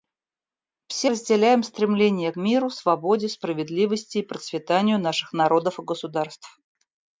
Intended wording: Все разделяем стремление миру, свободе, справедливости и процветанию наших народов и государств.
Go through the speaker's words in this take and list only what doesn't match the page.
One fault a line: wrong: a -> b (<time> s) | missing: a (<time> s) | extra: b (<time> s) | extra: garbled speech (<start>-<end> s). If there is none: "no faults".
no faults